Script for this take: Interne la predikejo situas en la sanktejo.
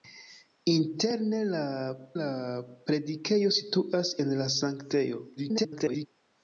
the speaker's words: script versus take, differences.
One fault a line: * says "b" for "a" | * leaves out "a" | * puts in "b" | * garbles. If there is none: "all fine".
* puts in "la"
* garbles